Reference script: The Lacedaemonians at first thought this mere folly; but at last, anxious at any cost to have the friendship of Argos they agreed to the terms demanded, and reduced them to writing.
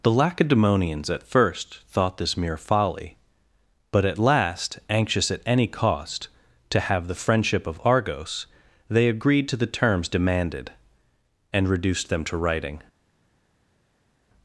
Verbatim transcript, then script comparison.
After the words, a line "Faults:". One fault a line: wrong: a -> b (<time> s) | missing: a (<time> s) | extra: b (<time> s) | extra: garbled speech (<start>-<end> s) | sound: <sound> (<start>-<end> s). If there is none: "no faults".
The Lacedaemonians at first thought this mere folly; but at last, anxious at any cost to have the friendship of Argos they agreed to the terms demanded, and reduced them to writing.
Faults:
no faults